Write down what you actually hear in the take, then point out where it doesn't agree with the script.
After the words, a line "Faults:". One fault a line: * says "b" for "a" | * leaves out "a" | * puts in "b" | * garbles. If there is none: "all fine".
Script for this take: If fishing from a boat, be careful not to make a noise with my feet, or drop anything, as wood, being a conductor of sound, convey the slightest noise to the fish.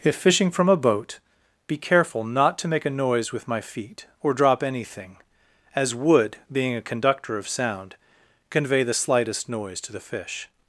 If fishing from a boat, be careful not to make a noise with my feet, or drop anything, as wood, being a conductor of sound, convey the slightest noise to the fish.
Faults:
all fine